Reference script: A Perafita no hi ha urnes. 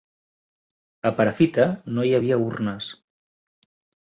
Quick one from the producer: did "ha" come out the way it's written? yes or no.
no